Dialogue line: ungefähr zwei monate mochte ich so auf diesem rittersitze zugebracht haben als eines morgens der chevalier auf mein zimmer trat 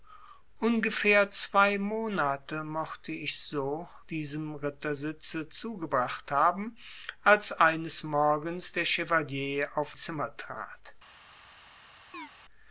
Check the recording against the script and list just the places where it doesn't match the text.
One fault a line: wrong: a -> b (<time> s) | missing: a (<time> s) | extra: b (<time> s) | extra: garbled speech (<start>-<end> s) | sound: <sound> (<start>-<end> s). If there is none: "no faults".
missing: auf (3.9 s)
missing: mein (10.0 s)
sound: chirp (12.1-12.3 s)